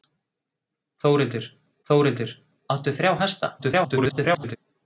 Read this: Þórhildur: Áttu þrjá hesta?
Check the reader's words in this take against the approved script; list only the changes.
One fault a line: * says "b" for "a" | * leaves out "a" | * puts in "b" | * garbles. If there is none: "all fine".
* puts in "þórhildur"
* garbles